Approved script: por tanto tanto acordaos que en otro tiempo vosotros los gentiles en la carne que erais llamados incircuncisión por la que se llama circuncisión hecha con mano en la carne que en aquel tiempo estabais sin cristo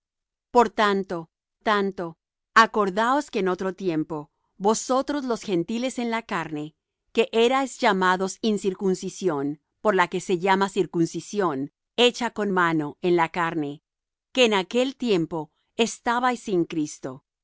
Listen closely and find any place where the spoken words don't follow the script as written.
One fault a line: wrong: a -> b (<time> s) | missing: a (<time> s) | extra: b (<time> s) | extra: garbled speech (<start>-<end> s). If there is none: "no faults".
no faults